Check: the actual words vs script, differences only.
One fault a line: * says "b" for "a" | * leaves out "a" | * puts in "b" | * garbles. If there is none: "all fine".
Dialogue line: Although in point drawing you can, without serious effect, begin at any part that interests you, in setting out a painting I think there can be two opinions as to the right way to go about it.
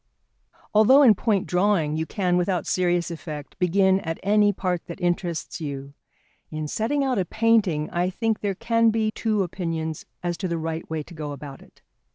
all fine